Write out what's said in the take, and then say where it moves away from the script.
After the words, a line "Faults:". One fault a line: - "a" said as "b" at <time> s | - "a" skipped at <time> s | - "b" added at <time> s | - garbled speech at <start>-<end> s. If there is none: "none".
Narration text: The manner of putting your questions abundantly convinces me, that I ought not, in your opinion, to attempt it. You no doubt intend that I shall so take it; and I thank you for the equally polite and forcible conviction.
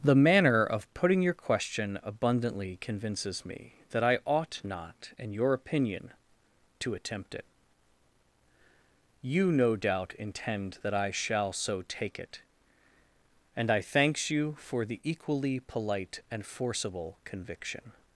The manner of putting your question abundantly convinces me, that I ought not, in your opinion, to attempt it. You no doubt intend that I shall so take it; and I thanks you for the equally polite and forcible conviction.
Faults:
- "questions" said as "question" at 1.4 s
- "thank" said as "thanks" at 13.8 s